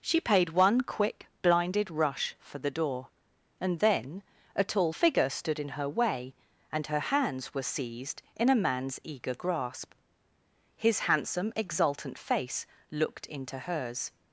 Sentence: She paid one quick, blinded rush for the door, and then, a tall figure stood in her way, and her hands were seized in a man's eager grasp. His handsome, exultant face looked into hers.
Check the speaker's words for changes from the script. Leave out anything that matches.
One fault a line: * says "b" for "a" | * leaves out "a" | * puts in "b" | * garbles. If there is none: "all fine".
all fine